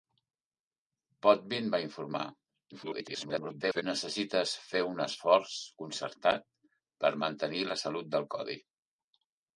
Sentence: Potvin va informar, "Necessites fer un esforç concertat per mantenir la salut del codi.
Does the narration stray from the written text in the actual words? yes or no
yes